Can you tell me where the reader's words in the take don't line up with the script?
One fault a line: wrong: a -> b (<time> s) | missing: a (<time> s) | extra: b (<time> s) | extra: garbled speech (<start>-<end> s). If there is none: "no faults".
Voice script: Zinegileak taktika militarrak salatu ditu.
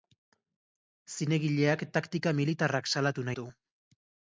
no faults